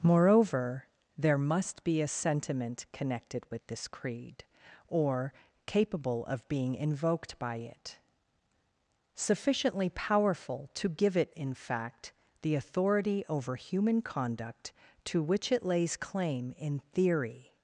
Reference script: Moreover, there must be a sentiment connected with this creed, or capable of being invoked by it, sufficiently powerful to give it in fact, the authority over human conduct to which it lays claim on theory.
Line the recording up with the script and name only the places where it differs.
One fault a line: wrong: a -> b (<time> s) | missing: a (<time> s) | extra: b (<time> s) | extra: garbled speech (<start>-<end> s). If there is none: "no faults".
wrong: on -> in (16.6 s)